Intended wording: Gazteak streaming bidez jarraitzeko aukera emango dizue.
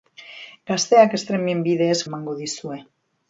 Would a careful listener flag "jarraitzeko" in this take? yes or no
yes